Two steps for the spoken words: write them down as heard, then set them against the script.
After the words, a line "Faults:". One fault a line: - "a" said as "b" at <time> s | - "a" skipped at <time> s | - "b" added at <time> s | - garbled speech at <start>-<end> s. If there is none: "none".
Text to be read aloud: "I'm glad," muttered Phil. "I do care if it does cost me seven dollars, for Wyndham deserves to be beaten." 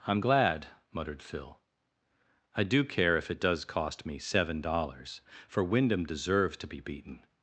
"I'm glad," muttered Phil. "I do care if it does cost me seven dollars, for Wyndham deserves to be beaten."
Faults:
none